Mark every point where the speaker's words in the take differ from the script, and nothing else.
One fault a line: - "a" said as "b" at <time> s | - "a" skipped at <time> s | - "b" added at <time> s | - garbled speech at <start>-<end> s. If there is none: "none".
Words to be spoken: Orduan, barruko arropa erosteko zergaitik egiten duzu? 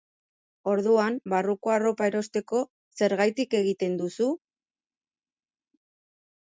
none